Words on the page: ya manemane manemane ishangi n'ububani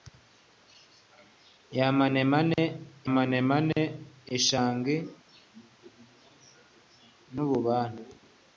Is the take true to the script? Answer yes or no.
yes